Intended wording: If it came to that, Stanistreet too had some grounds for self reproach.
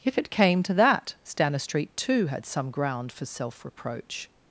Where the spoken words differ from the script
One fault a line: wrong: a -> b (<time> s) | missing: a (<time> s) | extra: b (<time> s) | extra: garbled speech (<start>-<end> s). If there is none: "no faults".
wrong: grounds -> ground (2.7 s)